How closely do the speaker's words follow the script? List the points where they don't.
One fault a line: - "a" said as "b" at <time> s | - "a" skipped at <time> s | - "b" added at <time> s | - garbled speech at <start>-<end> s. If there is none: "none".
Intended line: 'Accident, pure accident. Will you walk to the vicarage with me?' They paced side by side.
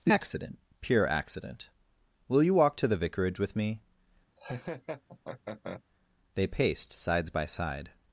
- "side" said as "sides" at 6.9 s